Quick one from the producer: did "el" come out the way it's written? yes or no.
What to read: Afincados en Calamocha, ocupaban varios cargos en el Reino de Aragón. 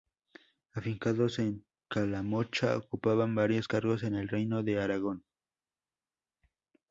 yes